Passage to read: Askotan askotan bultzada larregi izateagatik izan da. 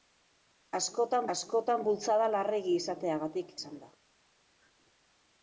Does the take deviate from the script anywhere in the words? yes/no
no